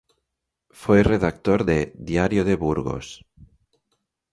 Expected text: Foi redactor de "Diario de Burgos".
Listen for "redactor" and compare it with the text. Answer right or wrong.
right